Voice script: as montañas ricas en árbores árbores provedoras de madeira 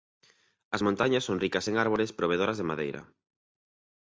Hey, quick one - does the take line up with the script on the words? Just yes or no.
no